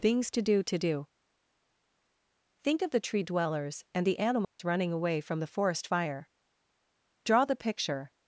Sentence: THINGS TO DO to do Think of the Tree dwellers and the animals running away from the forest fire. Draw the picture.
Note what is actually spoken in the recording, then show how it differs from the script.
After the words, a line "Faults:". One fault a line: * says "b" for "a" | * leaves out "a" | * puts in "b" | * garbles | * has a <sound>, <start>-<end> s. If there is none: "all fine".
THINGS TO DO to do Think of the Tree dwellers and the animals running away from the forest fire. Draw the picture.
Faults:
* has a dropout, 4.4-4.6 s